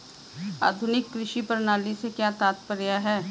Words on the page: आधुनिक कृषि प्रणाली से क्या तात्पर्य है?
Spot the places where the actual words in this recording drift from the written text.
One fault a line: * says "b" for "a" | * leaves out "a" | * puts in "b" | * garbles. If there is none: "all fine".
all fine